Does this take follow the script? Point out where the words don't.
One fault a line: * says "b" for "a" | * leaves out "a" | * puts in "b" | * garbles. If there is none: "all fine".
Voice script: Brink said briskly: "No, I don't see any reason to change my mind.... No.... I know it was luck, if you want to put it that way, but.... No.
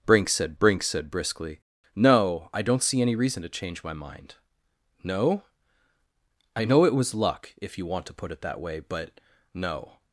* puts in "brink said"